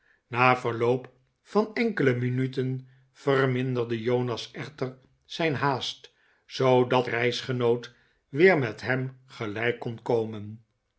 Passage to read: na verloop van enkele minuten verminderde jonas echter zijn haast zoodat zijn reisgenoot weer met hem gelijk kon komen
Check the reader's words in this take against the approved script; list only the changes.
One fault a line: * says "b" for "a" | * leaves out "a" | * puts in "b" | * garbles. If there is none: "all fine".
* leaves out "zijn"